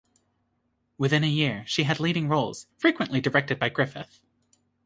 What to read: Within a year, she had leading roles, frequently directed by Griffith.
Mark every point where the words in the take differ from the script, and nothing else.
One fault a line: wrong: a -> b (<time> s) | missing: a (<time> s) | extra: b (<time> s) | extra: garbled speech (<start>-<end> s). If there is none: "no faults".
no faults